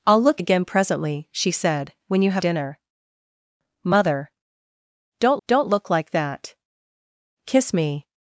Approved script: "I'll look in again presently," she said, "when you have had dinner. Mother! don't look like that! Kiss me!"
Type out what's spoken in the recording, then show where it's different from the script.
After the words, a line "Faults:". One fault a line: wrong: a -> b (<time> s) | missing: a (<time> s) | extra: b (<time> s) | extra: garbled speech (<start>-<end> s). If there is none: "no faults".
"I'll look again presently," she said, "when you have dinner. Mother! don't don't look like that! Kiss me!"
Faults:
missing: in (0.4 s)
missing: had (2.4 s)
extra: don't (5.5 s)